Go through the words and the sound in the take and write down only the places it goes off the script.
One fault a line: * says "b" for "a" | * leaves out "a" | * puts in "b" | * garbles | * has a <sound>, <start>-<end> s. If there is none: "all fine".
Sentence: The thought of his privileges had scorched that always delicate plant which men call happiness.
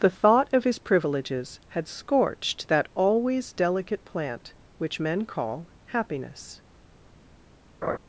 * has a laugh, 7.8-8.0 s